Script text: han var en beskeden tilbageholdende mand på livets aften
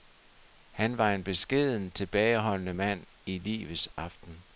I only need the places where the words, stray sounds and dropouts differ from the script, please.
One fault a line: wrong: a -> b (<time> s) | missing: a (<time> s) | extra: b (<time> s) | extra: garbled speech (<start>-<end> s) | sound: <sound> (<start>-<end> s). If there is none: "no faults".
wrong: på -> i (3.2 s)
sound: dropout (3.9-4.0 s)